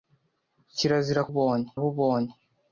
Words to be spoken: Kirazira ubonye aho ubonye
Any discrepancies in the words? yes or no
no